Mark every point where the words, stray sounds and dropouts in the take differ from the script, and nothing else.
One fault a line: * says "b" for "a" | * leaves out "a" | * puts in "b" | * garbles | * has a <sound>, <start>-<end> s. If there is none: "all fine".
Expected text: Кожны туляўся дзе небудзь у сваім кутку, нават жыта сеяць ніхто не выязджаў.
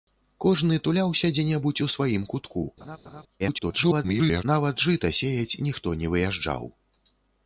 * has a laugh, 2.8-3.2 s
* garbles